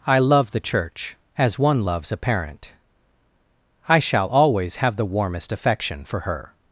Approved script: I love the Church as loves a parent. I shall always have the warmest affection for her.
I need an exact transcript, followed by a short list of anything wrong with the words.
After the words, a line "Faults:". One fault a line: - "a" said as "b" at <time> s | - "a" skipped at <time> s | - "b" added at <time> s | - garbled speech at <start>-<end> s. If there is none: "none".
I love the Church as one loves a parent. I shall always have the warmest affection for her.
Faults:
- "one" added at 1.6 s